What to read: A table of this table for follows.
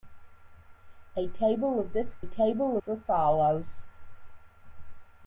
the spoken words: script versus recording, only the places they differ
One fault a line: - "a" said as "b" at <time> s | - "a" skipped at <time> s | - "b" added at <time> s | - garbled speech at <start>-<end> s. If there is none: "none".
none